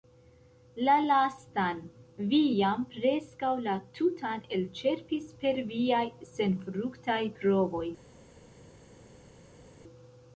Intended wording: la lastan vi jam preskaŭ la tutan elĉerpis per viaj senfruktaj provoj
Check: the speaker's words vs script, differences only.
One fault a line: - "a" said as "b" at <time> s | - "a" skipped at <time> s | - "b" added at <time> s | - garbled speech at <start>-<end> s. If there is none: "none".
none